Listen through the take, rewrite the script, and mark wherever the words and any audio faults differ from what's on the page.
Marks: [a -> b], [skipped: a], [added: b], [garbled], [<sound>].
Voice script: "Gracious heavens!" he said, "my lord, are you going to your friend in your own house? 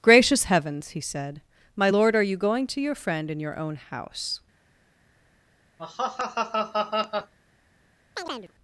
"Gracious heavens!" he said, "my lord, are you going to your friend in your own house? [laugh] [chirp]